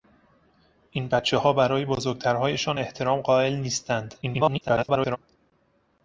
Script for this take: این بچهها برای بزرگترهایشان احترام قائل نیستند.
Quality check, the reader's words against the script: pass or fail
fail